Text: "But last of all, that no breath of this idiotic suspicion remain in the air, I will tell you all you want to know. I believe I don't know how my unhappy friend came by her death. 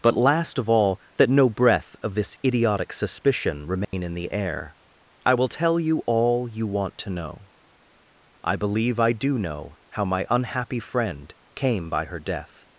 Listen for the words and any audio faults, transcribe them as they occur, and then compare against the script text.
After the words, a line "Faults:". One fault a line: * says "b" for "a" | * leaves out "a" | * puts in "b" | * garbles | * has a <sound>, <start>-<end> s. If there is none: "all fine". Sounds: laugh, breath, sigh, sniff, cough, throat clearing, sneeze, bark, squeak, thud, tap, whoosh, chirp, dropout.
"But last of all, that no breath of this idiotic suspicion remain in the air, I will tell you all you want to know. I believe I do know how my unhappy friend came by her death.
Faults:
* has a dropout, 3.8-3.9 s
* says "do" for "don't"